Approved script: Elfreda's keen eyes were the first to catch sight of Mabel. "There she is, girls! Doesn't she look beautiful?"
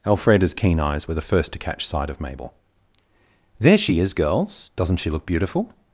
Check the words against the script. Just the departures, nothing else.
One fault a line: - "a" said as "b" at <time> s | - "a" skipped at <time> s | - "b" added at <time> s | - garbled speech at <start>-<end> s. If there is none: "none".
none